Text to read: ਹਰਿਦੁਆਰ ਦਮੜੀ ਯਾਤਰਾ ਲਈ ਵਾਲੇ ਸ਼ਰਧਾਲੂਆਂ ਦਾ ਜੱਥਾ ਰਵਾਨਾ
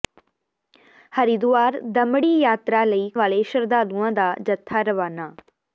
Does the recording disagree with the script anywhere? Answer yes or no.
no